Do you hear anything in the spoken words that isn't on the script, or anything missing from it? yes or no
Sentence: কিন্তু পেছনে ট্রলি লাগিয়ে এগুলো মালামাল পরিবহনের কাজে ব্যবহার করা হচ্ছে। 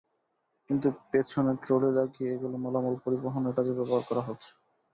no